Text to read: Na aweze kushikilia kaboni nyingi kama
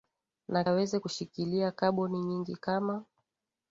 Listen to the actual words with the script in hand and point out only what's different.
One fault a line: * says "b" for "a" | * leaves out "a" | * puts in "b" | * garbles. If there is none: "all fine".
all fine